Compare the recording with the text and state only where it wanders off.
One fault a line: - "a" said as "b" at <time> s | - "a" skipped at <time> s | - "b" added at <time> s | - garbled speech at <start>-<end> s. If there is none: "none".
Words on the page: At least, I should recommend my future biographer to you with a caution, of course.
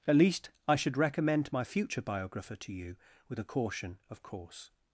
none